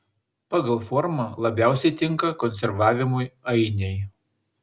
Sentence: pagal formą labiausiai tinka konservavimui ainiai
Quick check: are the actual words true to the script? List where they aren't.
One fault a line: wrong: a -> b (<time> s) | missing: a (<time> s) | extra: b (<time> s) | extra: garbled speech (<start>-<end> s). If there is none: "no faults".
no faults